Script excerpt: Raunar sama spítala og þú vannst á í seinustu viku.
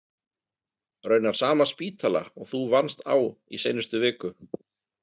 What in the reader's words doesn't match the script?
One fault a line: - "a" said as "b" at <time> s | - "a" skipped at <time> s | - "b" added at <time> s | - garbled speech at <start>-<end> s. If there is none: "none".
none